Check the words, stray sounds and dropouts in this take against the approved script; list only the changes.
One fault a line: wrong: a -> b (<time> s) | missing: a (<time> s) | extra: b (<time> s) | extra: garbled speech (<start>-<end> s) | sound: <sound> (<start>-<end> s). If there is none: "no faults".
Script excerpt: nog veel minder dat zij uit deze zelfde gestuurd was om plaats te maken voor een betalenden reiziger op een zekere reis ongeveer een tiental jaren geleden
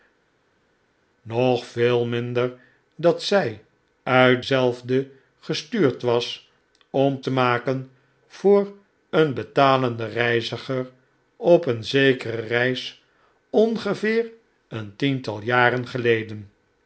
missing: deze (4.5 s)
missing: plaats (7.2 s)